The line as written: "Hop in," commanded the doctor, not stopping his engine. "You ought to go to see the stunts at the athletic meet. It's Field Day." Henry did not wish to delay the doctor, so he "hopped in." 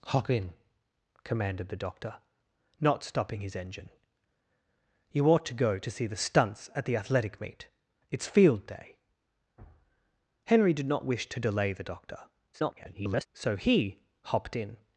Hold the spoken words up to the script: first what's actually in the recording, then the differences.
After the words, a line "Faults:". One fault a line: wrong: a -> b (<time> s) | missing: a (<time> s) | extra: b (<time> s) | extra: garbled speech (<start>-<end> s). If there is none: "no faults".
"Hop in," commanded the doctor, not stopping his engine. "You ought to go to see the stunts at the athletic meet. It's Field Day." Henry did not wish to delay the doctor, [garbled] so he "hopped in."
Faults:
extra: garbled speech (12.5-13.3 s)